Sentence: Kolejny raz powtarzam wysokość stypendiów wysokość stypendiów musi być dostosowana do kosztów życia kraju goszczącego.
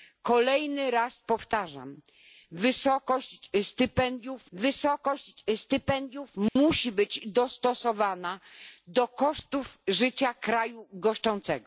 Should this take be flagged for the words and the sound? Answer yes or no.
yes